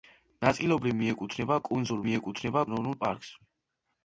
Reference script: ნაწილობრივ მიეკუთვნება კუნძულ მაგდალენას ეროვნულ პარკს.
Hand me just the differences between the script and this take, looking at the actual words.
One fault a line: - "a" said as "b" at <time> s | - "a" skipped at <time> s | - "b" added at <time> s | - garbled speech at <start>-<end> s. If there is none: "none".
- "მაგდალენას" said as "მიეკუთვნება" at 2.1 s